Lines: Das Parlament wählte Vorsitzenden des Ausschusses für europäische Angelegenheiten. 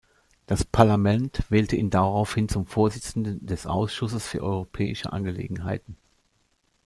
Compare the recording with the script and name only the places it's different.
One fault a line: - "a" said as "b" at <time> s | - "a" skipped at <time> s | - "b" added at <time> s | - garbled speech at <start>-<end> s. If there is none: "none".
- "ihn daraufhin zum" added at 1.8 s